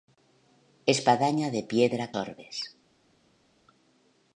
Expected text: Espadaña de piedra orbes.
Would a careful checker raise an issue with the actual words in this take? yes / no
no